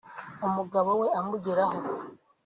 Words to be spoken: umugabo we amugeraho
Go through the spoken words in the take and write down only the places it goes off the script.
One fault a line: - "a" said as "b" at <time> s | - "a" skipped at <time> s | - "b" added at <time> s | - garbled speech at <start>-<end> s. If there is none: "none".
none